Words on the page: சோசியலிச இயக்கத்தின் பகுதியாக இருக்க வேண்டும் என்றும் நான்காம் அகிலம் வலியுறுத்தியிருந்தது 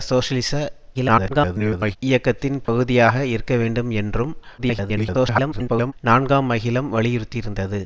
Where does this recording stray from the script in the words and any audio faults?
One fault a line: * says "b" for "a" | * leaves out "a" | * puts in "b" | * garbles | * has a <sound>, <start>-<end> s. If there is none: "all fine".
* garbles
* has a dropout, 2.7-2.7 s
* garbles